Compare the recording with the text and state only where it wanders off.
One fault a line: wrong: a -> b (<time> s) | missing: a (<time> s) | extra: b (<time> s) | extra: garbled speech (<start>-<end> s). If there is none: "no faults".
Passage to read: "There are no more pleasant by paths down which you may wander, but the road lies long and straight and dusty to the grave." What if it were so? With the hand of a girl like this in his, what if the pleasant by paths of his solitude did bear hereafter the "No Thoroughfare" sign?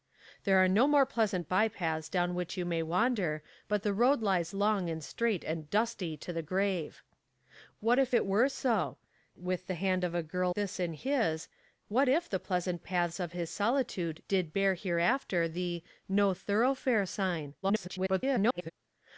missing: like (10.5 s)
missing: by (12.8 s)
extra: garbled speech (17.6-18.7 s)